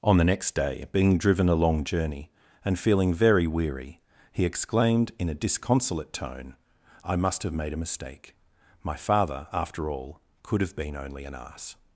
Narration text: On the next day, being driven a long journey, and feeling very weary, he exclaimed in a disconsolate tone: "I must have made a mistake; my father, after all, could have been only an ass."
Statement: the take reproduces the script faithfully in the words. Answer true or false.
true